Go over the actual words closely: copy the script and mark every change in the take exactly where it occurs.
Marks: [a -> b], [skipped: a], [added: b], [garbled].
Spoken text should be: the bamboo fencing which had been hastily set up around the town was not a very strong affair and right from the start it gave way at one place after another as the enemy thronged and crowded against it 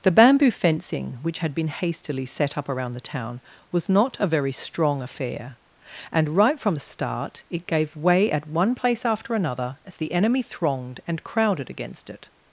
the bamboo fencing which had been hastily set up around the town was not a very strong affair and right from the start it gave way at one place after another as the enemy thronged and crowded against it